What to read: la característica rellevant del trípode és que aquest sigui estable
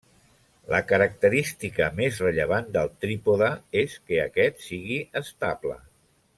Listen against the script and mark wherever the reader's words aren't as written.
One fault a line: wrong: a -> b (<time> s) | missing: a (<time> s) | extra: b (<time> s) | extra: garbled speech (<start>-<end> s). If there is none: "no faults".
extra: més (2.0 s)